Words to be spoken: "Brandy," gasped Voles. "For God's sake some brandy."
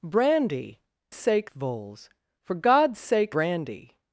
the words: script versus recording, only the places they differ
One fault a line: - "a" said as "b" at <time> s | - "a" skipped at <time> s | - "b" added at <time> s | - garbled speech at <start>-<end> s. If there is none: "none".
- "gasped" said as "sake" at 1.1 s
- "some" skipped at 3.3 s